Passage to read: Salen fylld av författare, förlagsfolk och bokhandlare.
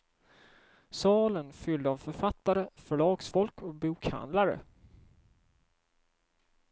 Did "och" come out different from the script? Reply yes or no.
no